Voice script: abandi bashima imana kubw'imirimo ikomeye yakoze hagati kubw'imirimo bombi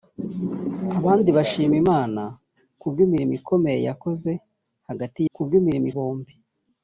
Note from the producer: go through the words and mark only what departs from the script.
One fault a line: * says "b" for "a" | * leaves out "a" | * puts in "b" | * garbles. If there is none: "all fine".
all fine